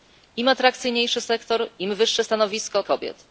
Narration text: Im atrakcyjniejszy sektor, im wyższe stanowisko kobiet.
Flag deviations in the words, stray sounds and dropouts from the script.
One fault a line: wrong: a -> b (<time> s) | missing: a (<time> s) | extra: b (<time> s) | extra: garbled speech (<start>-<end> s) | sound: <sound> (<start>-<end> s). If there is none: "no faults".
no faults